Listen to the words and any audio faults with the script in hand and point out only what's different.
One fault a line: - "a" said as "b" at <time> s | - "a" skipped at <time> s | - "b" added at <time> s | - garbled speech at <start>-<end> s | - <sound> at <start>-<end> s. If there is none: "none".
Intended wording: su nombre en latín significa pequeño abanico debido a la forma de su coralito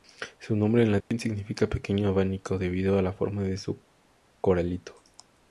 - dropout at 1.0-1.1 s